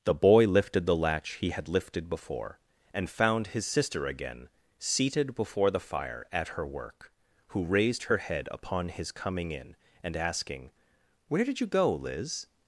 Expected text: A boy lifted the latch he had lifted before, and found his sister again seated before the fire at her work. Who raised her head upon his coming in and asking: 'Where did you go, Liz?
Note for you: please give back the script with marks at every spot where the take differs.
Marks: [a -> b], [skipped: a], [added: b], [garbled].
[A -> The] boy lifted the latch he had lifted before, and found his sister again seated before the fire at her work. Who raised her head upon his coming in and asking: 'Where did you go, Liz?